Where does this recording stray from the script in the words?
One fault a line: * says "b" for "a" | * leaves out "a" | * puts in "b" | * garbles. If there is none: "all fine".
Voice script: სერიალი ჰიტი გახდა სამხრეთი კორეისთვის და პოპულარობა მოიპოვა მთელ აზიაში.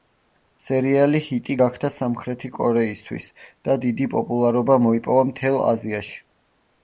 * puts in "დიდი"